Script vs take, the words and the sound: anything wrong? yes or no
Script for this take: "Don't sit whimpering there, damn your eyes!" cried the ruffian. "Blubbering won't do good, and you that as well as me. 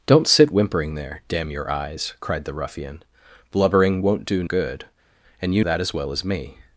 no